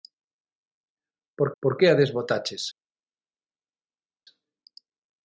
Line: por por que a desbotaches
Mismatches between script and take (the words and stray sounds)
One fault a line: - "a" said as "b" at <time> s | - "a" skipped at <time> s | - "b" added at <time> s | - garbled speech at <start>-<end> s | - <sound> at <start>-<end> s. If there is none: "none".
none